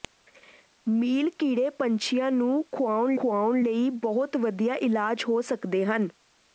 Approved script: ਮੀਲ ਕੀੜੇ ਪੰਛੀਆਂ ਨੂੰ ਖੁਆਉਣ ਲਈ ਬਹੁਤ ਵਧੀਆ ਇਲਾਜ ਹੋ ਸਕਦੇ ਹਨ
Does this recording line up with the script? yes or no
no